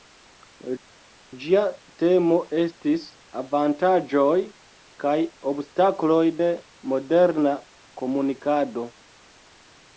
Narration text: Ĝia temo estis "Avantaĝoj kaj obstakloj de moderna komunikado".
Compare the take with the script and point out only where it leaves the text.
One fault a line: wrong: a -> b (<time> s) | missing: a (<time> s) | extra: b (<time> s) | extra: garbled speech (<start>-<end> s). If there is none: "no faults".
no faults